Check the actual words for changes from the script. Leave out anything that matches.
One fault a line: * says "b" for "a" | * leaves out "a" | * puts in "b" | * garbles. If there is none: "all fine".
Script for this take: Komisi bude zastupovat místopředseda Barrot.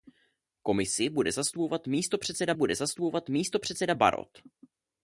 * puts in "bude zastupovat místopředseda"